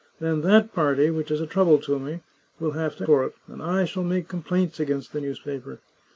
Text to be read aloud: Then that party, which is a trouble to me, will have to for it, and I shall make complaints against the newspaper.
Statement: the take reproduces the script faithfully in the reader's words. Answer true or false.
true